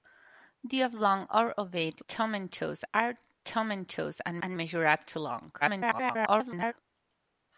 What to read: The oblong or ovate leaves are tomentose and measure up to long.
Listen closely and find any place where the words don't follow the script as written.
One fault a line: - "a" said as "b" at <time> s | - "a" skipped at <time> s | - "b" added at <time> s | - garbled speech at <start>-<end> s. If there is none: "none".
- "leaves" said as "tomentose" at 2.1 s
- "and" added at 4.4 s
- garbled speech at 5.6-6.7 s